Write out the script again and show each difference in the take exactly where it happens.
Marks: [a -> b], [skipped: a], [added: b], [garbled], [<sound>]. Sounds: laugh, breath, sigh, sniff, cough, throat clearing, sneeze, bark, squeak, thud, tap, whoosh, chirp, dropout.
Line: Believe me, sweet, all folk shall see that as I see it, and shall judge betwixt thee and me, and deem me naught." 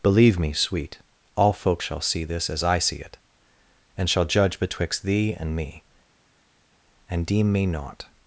Believe me, sweet, all folk shall see [that -> this] as I see it, and shall judge betwixt thee and me, and deem me naught."